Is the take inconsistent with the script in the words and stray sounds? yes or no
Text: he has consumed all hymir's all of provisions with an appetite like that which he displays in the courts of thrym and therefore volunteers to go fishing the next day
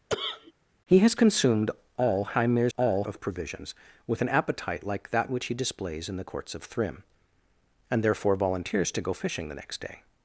yes